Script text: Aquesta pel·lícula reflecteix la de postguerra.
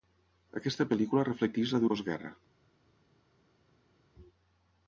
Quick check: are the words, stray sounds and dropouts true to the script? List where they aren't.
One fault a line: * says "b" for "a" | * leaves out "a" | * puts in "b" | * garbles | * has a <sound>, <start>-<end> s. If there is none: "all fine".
all fine